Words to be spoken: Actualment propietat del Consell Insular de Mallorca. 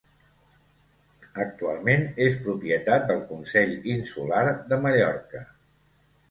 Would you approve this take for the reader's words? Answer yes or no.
no